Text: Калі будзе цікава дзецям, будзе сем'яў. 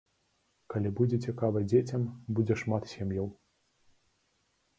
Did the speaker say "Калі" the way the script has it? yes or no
yes